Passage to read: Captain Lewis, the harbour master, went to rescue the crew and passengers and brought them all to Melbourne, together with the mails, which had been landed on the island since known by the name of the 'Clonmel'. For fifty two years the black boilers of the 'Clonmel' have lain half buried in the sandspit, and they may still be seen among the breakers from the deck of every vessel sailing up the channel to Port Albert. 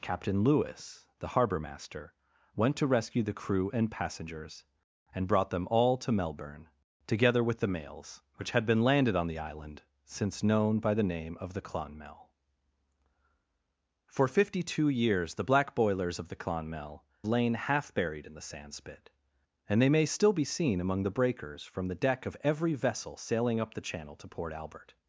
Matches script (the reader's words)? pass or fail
fail